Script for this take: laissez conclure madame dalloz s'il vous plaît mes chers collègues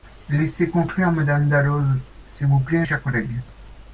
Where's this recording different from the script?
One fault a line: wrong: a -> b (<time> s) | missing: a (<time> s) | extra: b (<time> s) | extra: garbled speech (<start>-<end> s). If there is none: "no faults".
missing: mes (2.9 s)